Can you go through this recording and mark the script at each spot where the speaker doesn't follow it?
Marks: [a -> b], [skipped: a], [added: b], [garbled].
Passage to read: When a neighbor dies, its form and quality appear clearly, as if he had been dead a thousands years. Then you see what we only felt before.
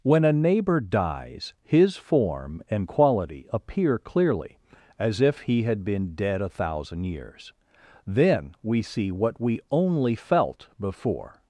When a neighbor dies, [its -> his] form and quality appear clearly, as if he had been dead a [thousands -> thousand] years. Then [you -> we] see what we only felt before.